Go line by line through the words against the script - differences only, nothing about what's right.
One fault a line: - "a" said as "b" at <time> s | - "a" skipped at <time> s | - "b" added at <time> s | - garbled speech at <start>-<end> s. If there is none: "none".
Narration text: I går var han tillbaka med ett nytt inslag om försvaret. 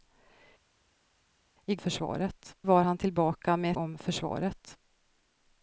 - "går" said as "försvaret" at 1.7 s
- "ett nytt inslag" skipped at 3.7 s